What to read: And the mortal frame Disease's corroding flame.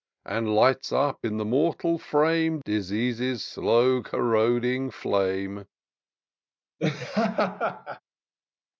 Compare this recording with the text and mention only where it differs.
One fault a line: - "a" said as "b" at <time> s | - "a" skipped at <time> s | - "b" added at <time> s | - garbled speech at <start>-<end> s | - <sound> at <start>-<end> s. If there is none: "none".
- "lights up in" added at 0.6 s
- "slow" added at 3.4 s
- laugh at 6.8-8.0 s